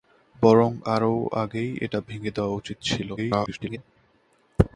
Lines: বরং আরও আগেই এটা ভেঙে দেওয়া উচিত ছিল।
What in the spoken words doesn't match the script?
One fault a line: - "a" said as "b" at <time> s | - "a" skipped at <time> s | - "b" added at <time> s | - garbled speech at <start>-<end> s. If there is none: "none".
- garbled speech at 3.2-3.8 s